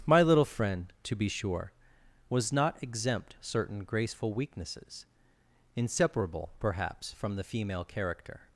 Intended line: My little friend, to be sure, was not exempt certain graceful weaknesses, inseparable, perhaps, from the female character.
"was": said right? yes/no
yes